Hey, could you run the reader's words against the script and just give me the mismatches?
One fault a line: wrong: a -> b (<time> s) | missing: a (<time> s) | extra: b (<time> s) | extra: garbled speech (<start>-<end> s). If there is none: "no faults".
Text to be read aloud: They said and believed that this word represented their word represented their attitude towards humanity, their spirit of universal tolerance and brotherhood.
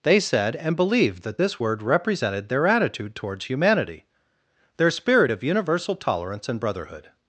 missing: word represented their (2.7 s)